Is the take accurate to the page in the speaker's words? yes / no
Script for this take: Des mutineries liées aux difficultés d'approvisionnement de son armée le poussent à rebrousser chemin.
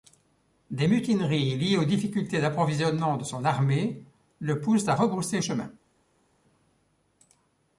yes